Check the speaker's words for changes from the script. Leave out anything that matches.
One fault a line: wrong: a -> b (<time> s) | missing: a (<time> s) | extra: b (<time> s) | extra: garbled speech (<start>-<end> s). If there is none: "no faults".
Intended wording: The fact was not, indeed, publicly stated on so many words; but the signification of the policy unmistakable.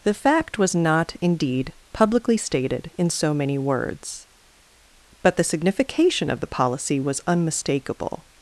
wrong: on -> in (3.0 s)
extra: was (7.0 s)